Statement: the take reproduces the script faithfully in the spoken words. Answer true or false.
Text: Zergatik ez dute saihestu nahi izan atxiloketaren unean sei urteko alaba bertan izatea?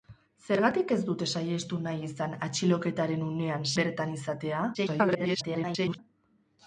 false